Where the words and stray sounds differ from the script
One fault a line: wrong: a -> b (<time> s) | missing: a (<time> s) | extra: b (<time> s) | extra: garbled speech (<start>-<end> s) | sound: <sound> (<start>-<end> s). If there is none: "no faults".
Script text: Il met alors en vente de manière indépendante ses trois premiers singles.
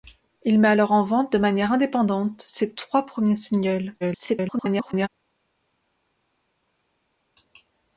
extra: garbled speech (4.0-5.1 s)